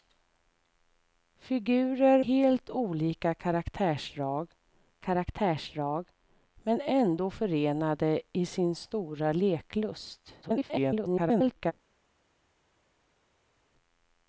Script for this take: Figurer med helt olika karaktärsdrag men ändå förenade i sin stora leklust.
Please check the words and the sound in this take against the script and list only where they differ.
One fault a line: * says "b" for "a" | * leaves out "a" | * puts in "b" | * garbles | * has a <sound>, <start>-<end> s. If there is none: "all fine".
* leaves out "med"
* puts in "karaktärsdrag"
* garbles